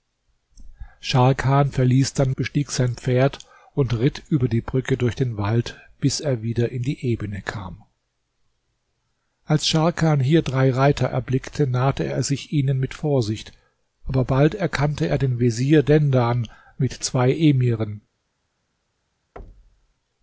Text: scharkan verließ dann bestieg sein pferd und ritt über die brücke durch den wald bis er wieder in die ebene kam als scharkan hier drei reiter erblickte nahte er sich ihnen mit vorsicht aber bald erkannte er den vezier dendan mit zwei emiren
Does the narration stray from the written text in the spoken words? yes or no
no